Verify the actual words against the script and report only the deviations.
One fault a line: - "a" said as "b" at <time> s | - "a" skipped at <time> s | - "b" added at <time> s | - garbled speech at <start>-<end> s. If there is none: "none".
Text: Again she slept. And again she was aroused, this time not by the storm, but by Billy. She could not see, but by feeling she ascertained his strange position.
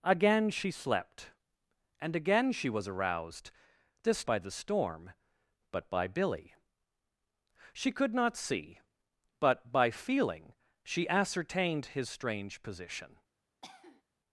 - "time not" skipped at 4.2 s